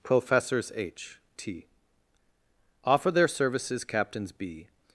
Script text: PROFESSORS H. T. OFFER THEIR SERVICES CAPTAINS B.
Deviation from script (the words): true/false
false